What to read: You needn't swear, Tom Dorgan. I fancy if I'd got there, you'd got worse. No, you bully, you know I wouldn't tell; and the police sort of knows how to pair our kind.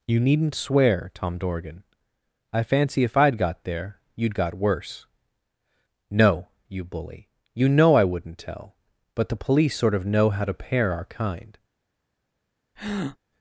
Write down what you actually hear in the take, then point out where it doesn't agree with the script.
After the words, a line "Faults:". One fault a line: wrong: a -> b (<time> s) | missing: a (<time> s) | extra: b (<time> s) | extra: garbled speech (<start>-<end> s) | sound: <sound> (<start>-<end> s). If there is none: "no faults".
You needn't swear, Tom Dorgan. I fancy if I'd got there, you'd got worse. No, you bully, you know I wouldn't tell; but the police sort of know how to pair our kind.
Faults:
wrong: and -> but (9.1 s)
wrong: knows -> know (10.0 s)
sound: breath (12.8-13.2 s)